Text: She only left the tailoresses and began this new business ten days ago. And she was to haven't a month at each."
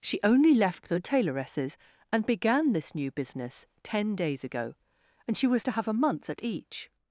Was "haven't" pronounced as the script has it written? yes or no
no